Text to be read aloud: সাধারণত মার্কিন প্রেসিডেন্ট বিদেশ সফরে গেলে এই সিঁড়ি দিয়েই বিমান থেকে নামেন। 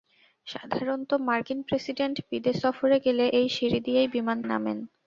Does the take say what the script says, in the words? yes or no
no